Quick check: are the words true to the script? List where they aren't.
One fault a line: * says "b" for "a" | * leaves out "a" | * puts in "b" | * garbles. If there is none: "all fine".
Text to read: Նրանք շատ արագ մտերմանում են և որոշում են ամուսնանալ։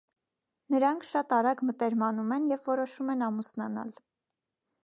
all fine